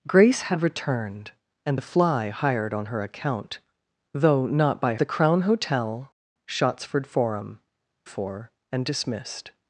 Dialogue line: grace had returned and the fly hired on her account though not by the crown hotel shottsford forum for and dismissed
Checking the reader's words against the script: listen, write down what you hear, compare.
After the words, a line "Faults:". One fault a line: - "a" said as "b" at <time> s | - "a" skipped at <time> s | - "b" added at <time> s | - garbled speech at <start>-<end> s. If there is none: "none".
grace had returned and the fly hired on her account though not by the crown hotel shottsford forum for and dismissed
Faults:
none